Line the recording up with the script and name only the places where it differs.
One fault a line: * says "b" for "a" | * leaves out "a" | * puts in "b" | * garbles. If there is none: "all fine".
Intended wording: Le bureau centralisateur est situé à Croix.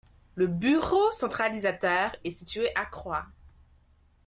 all fine